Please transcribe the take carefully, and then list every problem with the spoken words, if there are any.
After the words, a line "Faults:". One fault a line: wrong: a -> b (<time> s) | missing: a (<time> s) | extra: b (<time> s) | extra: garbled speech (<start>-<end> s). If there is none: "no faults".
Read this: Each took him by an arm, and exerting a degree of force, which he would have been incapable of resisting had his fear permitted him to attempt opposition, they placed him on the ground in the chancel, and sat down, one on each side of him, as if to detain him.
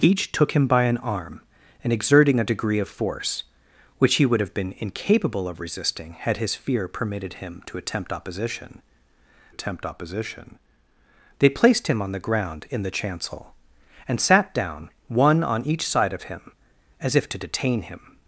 Each took him by an arm, and exerting a degree of force, which he would have been incapable of resisting had his fear permitted him to attempt opposition attempt opposition, they placed him on the ground in the chancel, and sat down, one on each side of him, as if to detain him.
Faults:
extra: attempt opposition (9.5 s)